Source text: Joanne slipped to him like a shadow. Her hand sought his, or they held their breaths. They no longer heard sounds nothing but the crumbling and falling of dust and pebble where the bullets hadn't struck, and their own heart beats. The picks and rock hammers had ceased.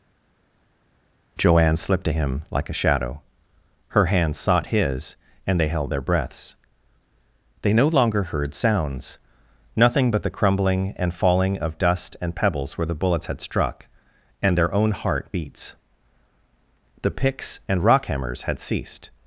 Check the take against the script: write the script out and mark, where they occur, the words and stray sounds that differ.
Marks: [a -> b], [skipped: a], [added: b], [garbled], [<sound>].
Joanne slipped to him like a shadow. Her hand sought his, [or -> and] they held their breaths. They no longer heard sounds nothing but the crumbling and falling of dust and [pebble -> pebbles] where the bullets [hadn't -> had] struck, and their own heart beats. The picks and rock hammers had ceased.